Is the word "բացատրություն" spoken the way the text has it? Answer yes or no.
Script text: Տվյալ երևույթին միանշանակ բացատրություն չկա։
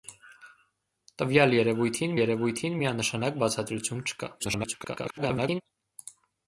yes